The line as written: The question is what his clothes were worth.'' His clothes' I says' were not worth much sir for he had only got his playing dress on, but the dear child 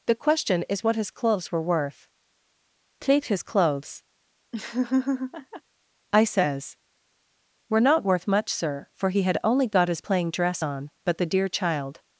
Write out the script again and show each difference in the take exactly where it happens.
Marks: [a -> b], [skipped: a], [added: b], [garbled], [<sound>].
The question is what his clothes were worth.'' [added: take] His clothes' [laugh] I says' were not worth much sir for he had only got his playing dress on, but the dear child